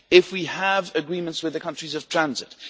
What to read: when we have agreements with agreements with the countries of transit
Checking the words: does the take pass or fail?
fail